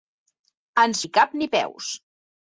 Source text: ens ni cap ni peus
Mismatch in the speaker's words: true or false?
false